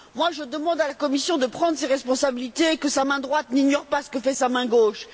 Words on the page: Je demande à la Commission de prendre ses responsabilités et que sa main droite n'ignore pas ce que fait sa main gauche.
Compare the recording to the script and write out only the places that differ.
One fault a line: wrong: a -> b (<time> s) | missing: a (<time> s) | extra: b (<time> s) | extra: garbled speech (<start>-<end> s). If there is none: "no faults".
no faults